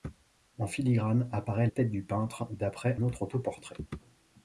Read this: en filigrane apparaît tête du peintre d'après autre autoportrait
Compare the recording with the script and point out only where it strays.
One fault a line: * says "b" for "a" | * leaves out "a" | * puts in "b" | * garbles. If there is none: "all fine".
all fine